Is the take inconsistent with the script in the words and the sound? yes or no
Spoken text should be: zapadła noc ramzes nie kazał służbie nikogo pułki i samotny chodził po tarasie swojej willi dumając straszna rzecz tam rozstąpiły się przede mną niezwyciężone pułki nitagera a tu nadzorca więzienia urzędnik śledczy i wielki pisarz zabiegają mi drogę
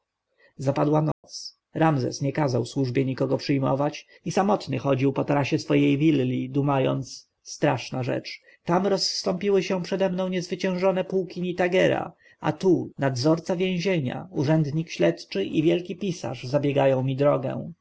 yes